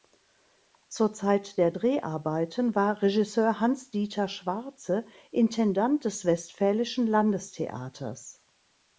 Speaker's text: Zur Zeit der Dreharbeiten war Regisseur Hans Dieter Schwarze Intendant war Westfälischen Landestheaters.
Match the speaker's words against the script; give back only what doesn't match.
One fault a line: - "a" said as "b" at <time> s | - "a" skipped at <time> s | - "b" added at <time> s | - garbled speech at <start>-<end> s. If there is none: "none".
- "war" said as "des" at 6.0 s